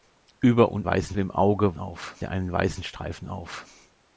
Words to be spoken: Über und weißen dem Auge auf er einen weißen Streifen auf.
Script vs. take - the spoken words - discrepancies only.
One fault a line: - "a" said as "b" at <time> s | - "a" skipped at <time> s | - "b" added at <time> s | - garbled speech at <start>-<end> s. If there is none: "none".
none